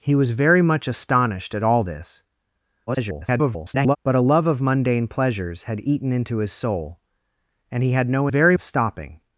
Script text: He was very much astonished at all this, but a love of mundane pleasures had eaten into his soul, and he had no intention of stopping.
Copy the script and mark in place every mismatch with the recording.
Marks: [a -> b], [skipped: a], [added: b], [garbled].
He was very much astonished at all this, [garbled] but a love of mundane pleasures had eaten into his soul, and he had no [intention -> very] of stopping.